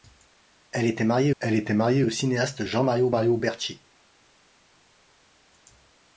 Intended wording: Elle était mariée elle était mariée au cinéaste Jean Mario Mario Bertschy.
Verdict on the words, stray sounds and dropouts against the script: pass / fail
pass